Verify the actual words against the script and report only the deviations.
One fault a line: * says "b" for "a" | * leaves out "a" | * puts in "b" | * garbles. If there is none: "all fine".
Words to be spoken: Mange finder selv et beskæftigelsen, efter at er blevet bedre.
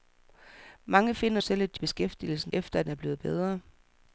all fine